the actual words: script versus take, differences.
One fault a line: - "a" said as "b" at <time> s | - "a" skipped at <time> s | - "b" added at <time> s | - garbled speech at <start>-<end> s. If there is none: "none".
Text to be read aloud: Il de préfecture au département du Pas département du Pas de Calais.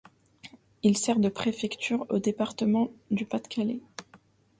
- "sert" added at 1.0 s
- "département du Pas" skipped at 3.4 s